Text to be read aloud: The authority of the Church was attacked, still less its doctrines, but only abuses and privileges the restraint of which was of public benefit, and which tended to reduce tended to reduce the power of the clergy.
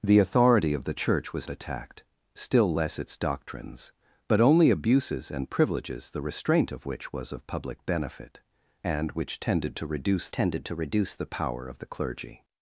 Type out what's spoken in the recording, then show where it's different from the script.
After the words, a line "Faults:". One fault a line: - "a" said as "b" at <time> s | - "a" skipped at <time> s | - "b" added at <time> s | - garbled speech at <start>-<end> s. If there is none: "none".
The authority of the Church was attacked, still less its doctrines, but only abuses and privileges the restraint of which was of public benefit, and which tended to reduce tended to reduce the power of the clergy.
Faults:
none